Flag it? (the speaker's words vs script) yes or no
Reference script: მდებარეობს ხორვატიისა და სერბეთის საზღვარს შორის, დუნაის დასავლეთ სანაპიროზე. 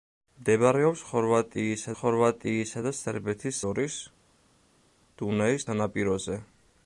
yes